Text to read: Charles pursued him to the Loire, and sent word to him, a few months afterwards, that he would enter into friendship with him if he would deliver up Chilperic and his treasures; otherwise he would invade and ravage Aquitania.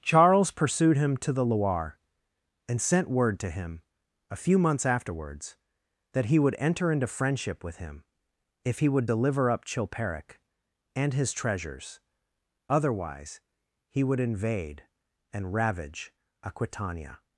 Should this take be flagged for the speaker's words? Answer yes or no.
no